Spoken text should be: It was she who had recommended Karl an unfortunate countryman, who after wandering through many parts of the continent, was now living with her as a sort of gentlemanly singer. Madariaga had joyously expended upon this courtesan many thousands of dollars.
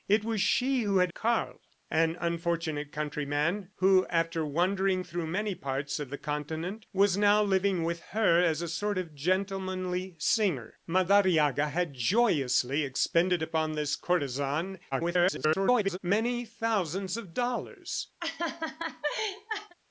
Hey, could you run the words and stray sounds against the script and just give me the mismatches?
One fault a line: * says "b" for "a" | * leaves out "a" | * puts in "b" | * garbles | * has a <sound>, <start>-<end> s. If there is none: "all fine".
* leaves out "recommended"
* garbles
* has a laugh, 18.2-19.7 s